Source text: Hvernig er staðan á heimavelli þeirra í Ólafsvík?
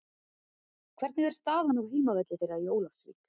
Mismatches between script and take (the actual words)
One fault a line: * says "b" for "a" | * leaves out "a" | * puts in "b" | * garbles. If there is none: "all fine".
all fine